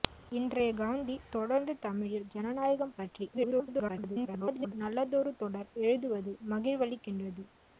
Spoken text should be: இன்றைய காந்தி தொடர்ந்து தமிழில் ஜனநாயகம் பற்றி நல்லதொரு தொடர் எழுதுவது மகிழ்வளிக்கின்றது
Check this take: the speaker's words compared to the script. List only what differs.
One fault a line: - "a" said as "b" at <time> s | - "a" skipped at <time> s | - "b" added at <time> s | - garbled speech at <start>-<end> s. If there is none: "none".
- garbled speech at 3.3-4.7 s